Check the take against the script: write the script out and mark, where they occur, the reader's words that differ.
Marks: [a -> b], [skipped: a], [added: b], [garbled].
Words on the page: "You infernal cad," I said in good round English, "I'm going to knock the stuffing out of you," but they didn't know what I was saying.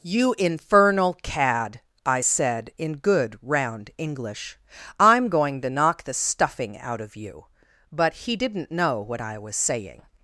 "You infernal cad," I said in good round English, "I'm going to knock the stuffing out of you," but [they -> he] didn't know what I was saying.